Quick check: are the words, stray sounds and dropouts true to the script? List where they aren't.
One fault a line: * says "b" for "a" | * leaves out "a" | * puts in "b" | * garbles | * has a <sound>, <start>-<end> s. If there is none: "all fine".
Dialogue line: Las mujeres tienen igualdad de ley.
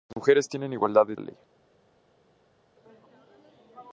all fine